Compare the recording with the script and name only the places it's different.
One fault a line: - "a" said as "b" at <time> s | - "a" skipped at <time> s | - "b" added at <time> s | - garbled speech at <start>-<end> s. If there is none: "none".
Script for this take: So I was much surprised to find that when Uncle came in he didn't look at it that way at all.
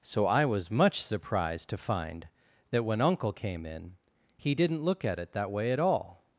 none